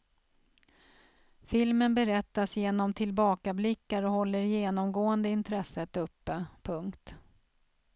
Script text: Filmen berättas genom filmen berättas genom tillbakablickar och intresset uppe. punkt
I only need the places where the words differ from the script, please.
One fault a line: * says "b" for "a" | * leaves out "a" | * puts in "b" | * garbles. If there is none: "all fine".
* says "tillbakablickar och håller genomgående" for "filmen berättas genom tillbakablickar och"